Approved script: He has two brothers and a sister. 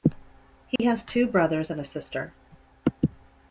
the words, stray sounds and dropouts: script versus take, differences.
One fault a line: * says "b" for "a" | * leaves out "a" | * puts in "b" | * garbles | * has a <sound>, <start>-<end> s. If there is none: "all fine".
* has a dropout, 0.8-0.8 s